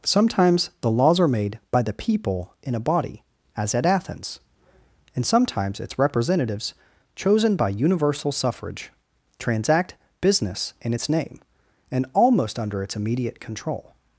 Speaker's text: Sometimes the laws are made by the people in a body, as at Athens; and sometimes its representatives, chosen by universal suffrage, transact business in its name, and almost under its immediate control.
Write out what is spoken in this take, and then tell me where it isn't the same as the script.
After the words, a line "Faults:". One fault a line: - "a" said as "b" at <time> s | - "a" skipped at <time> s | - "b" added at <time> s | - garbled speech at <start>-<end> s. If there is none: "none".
Sometimes the laws are made by the people in a body, as at Athens; and sometimes its representatives, chosen by universal suffrage, transact business in its name, and almost under its immediate control.
Faults:
none